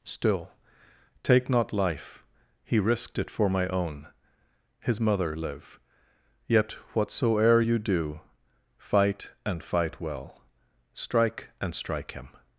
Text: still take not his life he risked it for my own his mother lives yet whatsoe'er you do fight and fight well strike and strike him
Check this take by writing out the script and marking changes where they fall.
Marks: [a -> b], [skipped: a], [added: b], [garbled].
still take not [skipped: his] life he risked it for my own his mother [lives -> live] yet whatsoe'er you do fight and fight well strike and strike him